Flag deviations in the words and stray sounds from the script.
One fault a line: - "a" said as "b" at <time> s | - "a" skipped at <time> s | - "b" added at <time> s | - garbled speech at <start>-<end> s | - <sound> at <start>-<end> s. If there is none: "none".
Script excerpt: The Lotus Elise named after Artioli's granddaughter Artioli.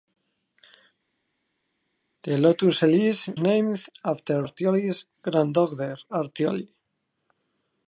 none